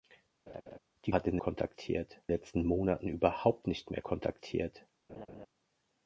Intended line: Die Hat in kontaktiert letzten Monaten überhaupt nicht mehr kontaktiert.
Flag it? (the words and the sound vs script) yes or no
yes